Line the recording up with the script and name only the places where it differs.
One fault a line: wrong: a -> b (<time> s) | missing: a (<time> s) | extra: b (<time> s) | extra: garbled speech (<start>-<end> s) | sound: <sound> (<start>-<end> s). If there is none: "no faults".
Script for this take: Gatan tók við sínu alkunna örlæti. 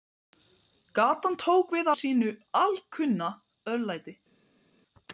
no faults